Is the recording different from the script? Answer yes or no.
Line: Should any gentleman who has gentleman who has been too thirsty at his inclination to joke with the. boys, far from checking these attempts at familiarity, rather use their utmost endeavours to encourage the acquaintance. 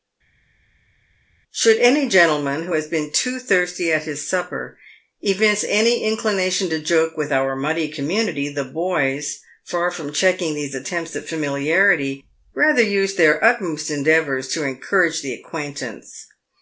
yes